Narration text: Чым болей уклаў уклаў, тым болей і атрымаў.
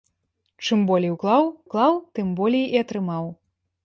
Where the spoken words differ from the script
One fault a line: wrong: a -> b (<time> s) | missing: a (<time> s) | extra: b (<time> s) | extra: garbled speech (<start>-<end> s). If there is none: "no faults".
no faults